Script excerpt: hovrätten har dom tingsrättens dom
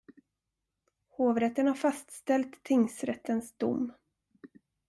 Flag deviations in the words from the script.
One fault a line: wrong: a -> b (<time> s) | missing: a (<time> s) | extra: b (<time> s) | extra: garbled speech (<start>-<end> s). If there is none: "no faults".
wrong: dom -> fastställt (1.8 s)